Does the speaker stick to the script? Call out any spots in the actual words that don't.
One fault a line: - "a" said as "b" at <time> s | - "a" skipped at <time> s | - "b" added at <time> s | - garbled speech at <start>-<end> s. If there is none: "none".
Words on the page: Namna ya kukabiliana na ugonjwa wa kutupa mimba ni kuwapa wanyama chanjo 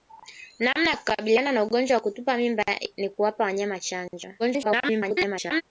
- garbled speech at 4.4-5.6 s